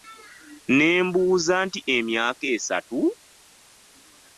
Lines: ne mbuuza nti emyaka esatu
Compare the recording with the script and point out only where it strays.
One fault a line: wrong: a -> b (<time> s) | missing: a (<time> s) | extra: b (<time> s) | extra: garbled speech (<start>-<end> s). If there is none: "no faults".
no faults